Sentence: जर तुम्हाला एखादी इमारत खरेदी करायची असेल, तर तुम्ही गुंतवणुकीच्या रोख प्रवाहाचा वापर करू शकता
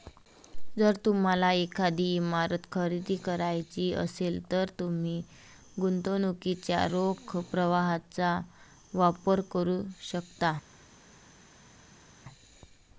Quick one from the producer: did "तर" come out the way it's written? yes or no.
yes